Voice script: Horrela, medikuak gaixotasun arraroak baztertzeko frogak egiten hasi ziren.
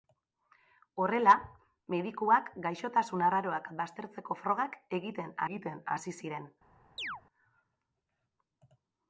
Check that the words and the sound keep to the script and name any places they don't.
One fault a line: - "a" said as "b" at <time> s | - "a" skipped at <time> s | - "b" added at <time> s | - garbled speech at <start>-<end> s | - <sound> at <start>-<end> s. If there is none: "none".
- "egiten" added at 5.5 s
- chirp at 7.0-7.2 s